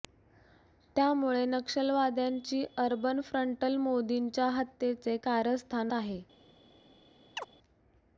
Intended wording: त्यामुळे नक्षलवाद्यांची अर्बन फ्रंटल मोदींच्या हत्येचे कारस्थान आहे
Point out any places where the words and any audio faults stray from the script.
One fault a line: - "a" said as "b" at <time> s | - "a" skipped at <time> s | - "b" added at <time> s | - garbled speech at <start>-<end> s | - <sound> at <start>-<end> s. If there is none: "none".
- chirp at 7.4-7.5 s